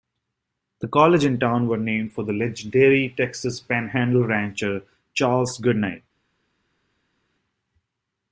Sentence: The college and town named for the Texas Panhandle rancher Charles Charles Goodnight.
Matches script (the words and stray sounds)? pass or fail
fail